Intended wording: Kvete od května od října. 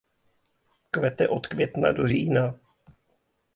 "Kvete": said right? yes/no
yes